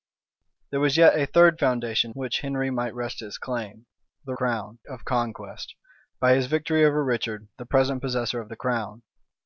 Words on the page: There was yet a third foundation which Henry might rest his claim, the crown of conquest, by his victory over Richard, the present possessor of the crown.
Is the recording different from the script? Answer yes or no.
no